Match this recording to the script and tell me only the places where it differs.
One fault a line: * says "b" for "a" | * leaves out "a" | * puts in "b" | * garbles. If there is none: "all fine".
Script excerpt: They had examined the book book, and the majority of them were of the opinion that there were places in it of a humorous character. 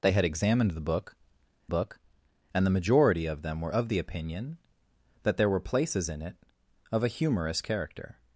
all fine